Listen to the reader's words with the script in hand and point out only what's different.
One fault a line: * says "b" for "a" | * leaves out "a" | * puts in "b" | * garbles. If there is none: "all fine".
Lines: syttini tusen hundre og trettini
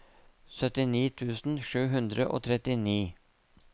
* puts in "sju"